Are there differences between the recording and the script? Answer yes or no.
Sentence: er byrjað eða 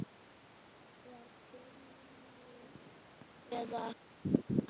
no